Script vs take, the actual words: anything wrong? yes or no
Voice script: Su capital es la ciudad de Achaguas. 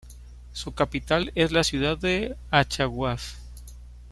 no